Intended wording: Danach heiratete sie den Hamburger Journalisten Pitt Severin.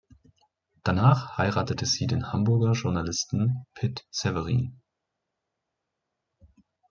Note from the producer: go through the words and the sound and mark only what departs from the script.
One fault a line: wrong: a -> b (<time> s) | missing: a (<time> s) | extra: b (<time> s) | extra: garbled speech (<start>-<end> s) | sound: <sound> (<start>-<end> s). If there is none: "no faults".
no faults